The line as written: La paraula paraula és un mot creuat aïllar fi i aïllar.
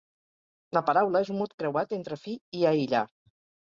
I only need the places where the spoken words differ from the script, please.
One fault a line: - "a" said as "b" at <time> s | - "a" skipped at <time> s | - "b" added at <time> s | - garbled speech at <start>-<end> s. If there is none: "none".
- "paraula" skipped at 1.2 s
- "aïllar" said as "entre" at 2.0 s